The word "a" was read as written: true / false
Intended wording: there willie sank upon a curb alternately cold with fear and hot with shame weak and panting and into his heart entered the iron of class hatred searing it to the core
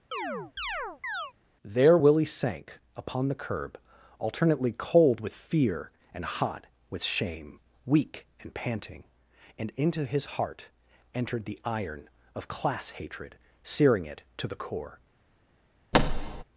false